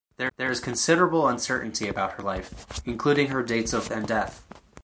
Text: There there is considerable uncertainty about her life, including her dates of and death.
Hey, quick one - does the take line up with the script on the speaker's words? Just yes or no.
yes